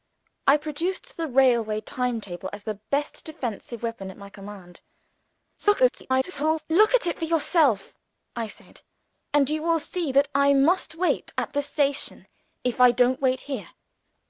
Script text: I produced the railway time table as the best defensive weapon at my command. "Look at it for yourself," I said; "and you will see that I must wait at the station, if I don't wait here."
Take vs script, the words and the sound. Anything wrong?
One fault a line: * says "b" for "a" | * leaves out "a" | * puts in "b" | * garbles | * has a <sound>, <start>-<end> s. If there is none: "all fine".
* garbles